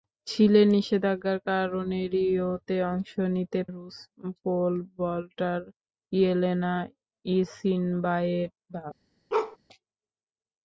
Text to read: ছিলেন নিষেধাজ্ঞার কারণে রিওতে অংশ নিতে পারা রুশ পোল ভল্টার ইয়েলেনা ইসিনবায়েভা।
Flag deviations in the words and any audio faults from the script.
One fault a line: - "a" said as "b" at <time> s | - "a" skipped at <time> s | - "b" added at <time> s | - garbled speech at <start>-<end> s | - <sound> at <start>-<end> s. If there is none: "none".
- "পারা" skipped at 3.6 s
- bark at 9.3-9.6 s